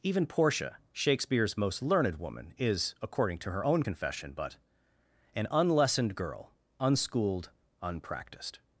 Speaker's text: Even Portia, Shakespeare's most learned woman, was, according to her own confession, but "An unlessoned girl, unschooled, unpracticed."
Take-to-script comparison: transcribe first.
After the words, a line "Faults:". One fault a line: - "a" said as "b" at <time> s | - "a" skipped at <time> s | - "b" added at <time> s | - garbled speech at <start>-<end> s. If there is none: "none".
Even Portia, Shakespeare's most learned woman, is, according to her own confession, but "An unlessoned girl, unschooled, unpracticed."
Faults:
- "was" said as "is" at 2.6 s